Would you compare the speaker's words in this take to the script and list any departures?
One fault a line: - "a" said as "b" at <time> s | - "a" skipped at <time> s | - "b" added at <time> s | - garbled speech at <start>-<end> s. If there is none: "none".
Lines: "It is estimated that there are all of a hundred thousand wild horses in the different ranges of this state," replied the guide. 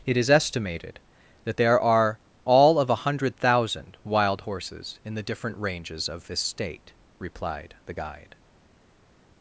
none